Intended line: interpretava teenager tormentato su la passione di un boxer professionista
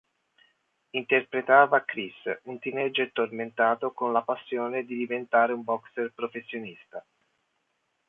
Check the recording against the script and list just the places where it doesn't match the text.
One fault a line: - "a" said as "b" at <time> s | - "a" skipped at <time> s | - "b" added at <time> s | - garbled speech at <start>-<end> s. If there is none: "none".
- "chris un" added at 1.9 s
- "su" said as "con" at 3.9 s
- "diventare" added at 5.0 s